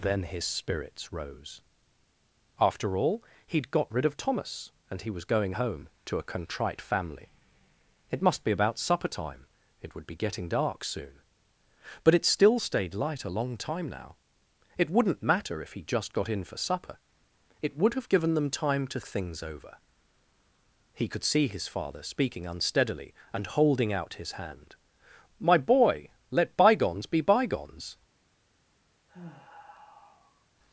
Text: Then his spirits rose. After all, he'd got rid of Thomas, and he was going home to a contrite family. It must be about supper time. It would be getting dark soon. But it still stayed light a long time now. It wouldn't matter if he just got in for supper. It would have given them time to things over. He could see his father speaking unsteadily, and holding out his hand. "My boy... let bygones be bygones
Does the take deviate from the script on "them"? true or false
false